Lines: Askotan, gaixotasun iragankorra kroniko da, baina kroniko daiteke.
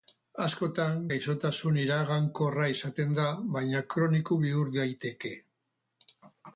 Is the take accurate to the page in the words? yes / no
no